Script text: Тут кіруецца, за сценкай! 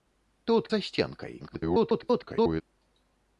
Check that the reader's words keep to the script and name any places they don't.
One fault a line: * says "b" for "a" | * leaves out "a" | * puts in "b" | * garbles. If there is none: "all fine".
* leaves out "кіруецца"
* garbles